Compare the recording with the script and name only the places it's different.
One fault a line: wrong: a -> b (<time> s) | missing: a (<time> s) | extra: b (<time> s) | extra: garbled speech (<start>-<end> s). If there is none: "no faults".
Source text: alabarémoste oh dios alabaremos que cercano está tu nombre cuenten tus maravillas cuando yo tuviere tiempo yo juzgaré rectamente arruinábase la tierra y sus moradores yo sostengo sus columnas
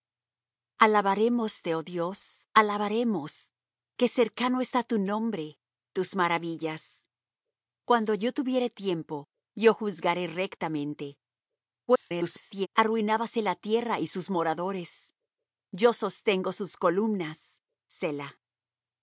missing: cuenten (5.6 s)
extra: garbled speech (11.9-12.7 s)